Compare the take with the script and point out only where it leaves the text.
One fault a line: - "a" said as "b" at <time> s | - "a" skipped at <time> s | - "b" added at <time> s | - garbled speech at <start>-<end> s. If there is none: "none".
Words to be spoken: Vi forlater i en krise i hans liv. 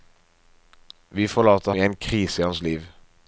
none